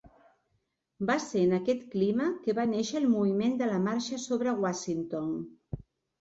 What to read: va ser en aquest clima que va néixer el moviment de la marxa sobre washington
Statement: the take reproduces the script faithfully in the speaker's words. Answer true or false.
true